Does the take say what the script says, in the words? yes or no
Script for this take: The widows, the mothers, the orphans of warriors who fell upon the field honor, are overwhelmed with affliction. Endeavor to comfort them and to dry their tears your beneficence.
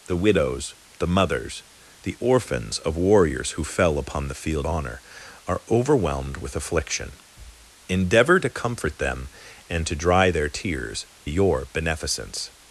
yes